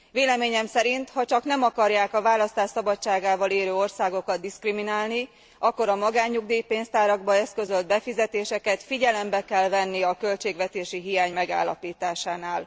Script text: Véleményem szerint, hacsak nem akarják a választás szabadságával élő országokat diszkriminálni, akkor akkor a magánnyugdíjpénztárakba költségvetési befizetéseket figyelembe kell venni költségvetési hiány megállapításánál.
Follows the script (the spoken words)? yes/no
no